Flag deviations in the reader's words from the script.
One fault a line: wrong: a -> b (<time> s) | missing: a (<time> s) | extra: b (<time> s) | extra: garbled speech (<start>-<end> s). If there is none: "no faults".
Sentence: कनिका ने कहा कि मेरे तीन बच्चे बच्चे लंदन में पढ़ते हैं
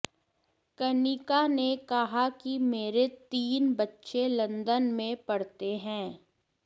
missing: बच्चे (4.3 s)